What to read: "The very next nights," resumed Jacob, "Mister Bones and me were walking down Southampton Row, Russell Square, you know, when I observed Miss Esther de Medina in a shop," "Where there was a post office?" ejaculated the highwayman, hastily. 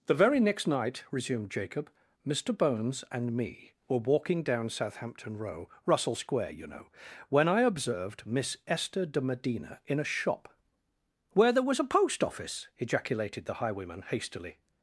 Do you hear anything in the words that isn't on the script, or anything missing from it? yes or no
yes